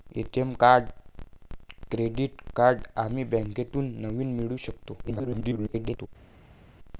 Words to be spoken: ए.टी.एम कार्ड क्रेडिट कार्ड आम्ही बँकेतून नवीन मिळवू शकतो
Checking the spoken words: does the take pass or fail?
fail